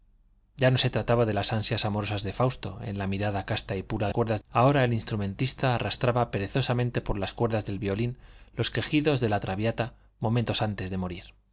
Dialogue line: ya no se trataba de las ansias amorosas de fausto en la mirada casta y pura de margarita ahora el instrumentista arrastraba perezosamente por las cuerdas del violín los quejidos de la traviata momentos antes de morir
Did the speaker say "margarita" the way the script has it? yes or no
no